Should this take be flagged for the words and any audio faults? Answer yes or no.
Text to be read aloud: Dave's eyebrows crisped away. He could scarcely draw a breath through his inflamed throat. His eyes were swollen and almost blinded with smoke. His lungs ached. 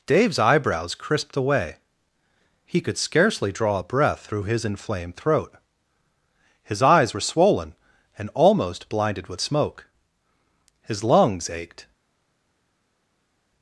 no